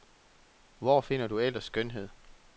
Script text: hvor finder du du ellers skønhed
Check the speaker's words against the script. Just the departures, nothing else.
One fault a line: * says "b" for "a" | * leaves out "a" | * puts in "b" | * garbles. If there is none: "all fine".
* leaves out "du"